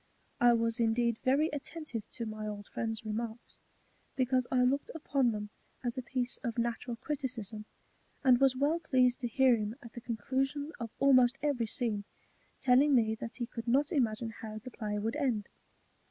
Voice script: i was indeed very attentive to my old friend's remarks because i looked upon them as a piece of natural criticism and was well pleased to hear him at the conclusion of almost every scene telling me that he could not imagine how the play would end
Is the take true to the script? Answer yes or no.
yes